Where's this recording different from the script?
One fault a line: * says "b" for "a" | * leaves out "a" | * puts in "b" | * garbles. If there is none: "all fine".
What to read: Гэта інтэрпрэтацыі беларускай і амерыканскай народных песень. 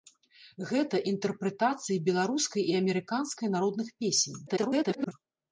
* garbles